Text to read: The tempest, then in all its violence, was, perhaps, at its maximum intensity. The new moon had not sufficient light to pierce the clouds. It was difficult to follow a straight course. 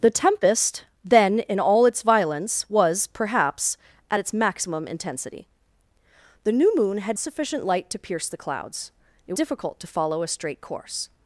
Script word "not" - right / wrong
wrong